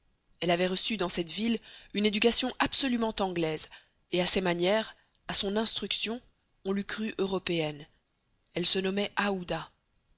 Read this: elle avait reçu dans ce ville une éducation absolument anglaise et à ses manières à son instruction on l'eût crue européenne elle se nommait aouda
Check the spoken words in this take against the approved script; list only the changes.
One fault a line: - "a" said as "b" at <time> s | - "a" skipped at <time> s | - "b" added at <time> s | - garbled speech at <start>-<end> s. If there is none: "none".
- "ce" said as "cette" at 1.1 s